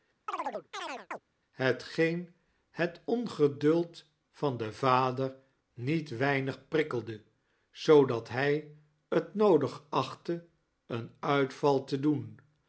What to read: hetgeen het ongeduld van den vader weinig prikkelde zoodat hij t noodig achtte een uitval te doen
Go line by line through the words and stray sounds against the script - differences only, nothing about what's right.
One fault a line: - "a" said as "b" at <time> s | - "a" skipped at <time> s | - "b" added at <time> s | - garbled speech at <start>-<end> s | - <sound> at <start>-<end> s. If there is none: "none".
- chirp at 0.3-1.2 s
- "niet" added at 5.7 s